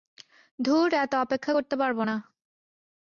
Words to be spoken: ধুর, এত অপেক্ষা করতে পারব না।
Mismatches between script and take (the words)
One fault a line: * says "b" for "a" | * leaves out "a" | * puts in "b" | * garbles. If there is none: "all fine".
all fine